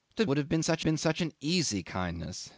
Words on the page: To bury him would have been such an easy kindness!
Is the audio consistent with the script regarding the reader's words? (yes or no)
no